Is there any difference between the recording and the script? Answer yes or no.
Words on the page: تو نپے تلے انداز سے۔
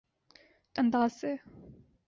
yes